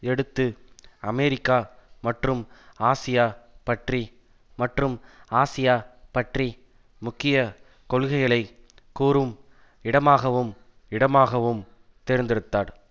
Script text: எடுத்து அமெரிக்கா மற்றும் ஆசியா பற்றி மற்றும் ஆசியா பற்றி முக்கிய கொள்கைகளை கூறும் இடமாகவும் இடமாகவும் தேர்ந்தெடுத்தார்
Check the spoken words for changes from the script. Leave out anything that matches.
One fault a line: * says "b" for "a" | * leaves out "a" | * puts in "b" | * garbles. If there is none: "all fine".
all fine